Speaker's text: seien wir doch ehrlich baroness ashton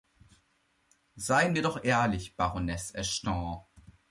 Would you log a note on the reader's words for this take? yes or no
no